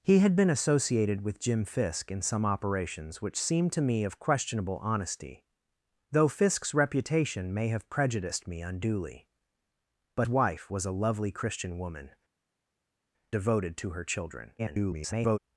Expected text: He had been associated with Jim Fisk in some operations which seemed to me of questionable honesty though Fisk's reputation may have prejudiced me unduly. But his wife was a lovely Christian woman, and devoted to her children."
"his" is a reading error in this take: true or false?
true